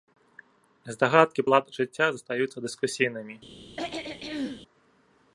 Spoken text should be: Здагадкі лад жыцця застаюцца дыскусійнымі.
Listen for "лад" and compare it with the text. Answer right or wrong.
right